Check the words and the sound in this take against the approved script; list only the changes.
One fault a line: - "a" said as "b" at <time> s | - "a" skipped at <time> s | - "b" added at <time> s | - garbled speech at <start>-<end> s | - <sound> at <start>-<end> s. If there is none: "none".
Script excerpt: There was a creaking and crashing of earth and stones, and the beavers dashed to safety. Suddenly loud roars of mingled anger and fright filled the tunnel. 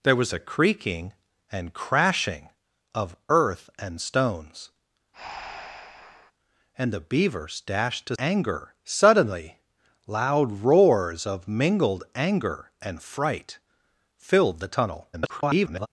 - breath at 5.1-6.3 s
- "safety" said as "anger" at 8.2 s
- garbled speech at 15.1-15.9 s